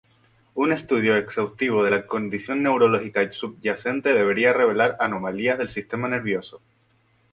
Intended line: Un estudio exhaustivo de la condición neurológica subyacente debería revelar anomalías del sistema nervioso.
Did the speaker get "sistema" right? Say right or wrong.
right